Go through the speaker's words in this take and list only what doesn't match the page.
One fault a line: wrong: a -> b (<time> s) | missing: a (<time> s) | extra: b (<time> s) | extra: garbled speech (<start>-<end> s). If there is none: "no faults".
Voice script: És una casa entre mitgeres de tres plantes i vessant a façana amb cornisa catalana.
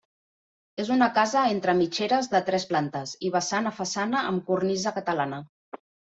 no faults